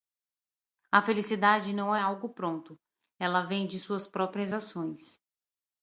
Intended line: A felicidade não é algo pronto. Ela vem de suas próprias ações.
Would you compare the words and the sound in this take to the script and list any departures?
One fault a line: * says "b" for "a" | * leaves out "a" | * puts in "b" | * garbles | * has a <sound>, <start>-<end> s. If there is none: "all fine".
all fine